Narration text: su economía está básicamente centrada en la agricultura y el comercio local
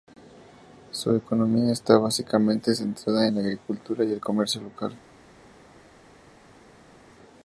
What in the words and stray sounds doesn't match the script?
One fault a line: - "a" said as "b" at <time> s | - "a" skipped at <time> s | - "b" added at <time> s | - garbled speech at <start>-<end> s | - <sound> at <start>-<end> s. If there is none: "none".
none